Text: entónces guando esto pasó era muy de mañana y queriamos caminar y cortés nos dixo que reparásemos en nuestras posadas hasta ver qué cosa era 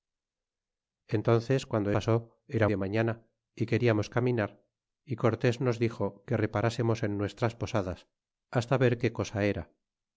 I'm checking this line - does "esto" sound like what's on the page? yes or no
no